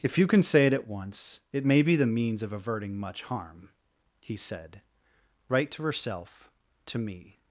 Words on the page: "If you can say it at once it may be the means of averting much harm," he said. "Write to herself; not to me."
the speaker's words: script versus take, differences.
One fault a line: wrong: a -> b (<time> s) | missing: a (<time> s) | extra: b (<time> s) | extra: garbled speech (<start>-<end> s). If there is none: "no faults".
missing: not (6.5 s)